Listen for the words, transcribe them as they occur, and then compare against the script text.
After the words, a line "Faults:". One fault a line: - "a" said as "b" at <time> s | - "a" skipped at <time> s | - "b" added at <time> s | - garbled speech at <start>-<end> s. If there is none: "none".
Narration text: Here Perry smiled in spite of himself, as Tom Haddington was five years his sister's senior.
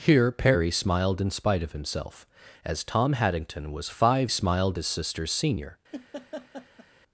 Here Perry smiled in spite of himself, as Tom Haddington was five smiled his sister's senior.
Faults:
- "years" said as "smiled" at 4.3 s